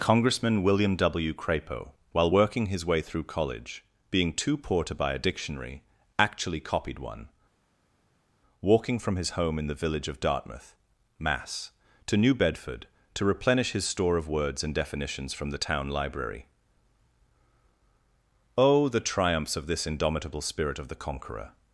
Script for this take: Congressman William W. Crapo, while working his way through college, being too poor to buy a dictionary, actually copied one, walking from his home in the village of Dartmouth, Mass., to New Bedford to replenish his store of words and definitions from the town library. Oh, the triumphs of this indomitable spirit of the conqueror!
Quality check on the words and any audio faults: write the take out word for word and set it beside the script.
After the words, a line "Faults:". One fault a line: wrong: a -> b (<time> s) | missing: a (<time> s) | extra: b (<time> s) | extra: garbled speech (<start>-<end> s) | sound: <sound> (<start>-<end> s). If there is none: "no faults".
Congressman William W. Crapo, while working his way through college, being too poor to buy a dictionary, actually copied one, walking from his home in the village of Dartmouth, Mass., to New Bedford to replenish his store of words and definitions from the town library. Oh, the triumphs of this indomitable spirit of the conqueror!
Faults:
no faults